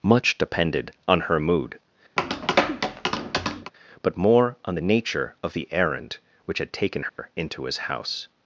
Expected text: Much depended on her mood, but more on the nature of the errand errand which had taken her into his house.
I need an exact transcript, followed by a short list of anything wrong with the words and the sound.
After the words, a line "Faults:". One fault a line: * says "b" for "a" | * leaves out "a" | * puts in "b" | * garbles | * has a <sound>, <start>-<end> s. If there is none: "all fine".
Much depended on her mood, but more on the nature of the errand which had taken her into his house.
Faults:
* has a tap, 2.2-3.7 s
* leaves out "errand"
* has a dropout, 7.1-7.2 s